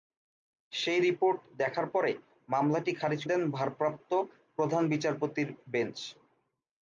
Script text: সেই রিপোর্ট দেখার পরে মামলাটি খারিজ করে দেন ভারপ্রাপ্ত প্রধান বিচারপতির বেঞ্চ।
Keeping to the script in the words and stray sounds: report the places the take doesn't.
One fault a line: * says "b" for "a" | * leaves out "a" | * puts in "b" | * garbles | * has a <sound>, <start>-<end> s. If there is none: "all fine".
* leaves out "করে"